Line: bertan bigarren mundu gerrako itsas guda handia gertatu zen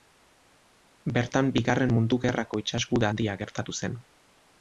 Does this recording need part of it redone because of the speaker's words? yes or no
no